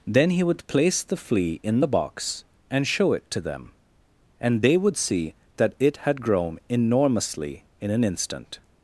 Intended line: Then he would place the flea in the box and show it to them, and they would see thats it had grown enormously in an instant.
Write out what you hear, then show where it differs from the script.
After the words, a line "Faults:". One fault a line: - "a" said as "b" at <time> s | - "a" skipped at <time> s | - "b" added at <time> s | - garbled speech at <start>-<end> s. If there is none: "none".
Then he would place the flea in the box and show it to them, and they would see that it had grown enormously in an instant.
Faults:
- "thats" said as "that" at 5.6 s